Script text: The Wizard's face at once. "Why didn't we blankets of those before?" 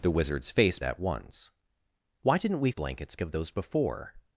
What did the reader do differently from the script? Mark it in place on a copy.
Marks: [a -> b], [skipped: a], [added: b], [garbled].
The Wizard's face at once. "Why didn't we blankets of those before?"